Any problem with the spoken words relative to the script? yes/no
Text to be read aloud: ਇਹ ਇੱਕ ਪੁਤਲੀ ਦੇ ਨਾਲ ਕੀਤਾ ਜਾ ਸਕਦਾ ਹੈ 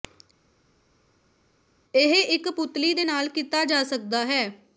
no